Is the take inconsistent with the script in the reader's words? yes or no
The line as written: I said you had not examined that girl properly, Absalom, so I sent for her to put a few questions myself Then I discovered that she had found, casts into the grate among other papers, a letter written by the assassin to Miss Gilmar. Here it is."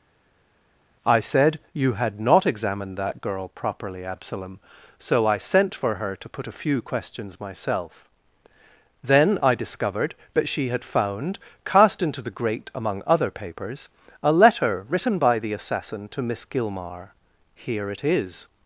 yes